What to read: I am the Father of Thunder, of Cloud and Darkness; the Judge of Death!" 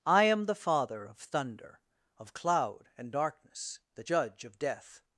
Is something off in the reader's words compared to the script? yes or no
no